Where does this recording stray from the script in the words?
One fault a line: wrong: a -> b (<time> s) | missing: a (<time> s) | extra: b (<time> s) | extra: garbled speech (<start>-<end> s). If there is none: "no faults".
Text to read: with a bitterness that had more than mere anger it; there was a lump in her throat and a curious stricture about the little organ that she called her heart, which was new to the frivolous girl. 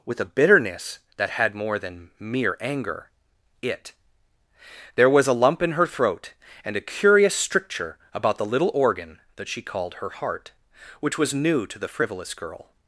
no faults